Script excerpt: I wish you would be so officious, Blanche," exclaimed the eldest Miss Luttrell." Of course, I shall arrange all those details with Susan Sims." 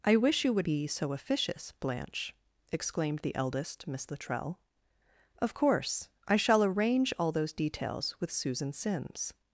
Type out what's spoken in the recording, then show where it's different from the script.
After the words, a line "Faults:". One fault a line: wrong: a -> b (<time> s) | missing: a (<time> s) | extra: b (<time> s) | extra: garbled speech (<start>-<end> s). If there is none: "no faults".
I wish you would be so officious, Blanche," exclaimed the eldest Miss Luttrell." Of course, I shall arrange all those details with Susan Sims."
Faults:
no faults